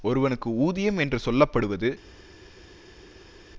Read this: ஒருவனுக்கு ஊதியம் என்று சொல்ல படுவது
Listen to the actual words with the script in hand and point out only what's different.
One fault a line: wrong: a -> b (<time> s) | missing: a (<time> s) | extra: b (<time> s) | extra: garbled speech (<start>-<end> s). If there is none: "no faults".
no faults